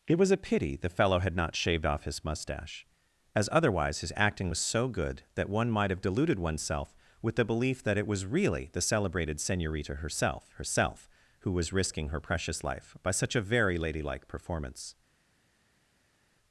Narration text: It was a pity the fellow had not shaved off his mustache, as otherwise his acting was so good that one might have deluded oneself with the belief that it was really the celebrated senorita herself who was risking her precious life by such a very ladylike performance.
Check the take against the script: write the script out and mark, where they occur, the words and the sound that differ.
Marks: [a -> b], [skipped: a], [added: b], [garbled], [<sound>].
It was a pity the fellow had not shaved off his mustache, as otherwise his acting was so good that one might have deluded oneself with the belief that it was really the celebrated senorita herself [added: herself] who was risking her precious life by such a very ladylike performance.